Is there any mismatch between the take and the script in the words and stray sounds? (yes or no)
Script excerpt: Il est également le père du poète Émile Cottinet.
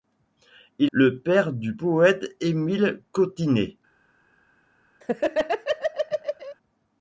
yes